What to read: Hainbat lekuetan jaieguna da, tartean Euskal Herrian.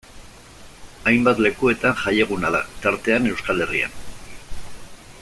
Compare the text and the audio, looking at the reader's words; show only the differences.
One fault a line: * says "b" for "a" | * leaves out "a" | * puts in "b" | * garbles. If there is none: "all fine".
all fine